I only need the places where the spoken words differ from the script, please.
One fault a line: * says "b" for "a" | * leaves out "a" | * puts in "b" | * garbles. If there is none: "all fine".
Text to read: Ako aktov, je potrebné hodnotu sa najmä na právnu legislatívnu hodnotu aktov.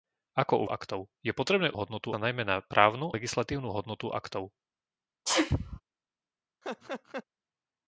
all fine